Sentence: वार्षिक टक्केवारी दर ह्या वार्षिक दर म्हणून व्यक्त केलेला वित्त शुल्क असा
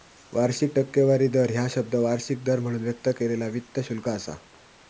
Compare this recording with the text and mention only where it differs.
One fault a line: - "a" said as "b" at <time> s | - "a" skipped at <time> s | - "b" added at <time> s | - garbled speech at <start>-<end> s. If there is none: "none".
- "शब्द" added at 1.7 s